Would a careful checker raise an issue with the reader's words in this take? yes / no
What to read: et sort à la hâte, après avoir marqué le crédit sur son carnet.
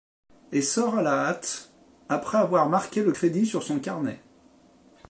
no